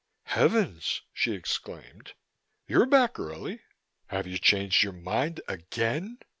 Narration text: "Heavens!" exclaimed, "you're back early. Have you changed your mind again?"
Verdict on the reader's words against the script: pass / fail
fail